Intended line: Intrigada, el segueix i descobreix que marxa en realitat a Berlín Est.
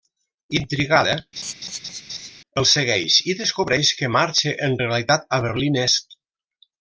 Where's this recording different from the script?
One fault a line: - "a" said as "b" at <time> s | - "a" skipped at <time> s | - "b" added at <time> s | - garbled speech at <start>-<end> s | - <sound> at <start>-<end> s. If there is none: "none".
- laugh at 1.4-2.3 s